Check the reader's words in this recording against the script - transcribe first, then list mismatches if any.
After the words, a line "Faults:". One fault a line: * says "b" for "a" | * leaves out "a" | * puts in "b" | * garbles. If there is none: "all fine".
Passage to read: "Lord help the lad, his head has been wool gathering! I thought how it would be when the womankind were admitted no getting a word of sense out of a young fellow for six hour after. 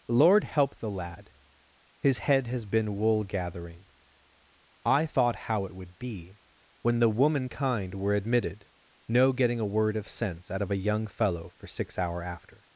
"Lord help the lad, his head has been wool gathering! I thought how it would be when the womankind were admitted no getting a word of sense out of a young fellow for six hour after.
Faults:
all fine